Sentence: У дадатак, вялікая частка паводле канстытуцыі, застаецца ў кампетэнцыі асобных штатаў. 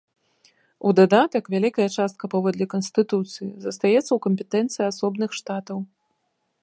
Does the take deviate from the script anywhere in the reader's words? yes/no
no